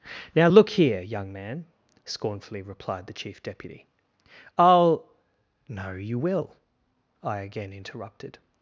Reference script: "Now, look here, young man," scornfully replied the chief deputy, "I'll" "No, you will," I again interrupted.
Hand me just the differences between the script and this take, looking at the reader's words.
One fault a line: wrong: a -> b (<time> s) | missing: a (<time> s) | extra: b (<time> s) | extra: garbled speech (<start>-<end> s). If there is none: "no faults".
no faults